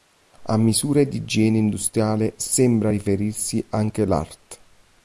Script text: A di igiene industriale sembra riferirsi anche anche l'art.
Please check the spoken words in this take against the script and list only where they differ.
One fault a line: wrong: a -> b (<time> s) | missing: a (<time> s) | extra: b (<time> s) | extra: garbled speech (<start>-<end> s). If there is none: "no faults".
extra: misure (0.6 s)
missing: anche (4.0 s)